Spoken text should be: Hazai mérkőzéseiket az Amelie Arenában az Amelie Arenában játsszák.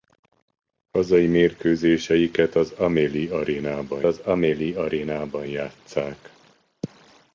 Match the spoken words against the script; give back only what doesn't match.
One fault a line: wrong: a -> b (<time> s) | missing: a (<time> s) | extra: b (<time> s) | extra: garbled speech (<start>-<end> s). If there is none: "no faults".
no faults